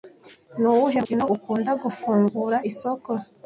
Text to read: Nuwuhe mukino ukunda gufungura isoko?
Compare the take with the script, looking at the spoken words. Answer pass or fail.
pass